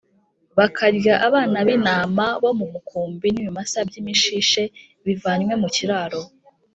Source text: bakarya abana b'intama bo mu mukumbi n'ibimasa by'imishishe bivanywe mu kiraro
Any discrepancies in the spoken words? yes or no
no